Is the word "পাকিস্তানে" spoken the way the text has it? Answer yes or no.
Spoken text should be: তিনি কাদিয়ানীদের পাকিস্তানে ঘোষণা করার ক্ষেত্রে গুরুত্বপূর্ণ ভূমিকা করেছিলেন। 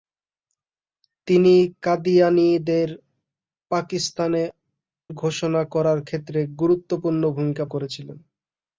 yes